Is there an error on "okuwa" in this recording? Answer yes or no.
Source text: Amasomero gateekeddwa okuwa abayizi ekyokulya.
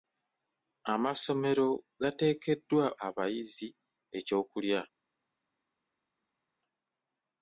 yes